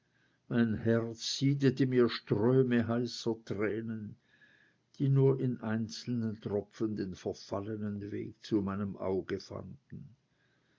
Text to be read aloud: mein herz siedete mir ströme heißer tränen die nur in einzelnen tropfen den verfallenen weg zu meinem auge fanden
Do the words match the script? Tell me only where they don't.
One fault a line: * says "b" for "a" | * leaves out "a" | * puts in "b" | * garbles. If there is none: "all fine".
all fine